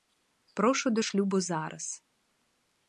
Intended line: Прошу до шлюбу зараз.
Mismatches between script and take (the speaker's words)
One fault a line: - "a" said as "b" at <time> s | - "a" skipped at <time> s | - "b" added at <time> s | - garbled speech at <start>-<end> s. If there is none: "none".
none